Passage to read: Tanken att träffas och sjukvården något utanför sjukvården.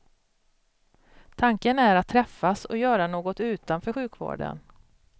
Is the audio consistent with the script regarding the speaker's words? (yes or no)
no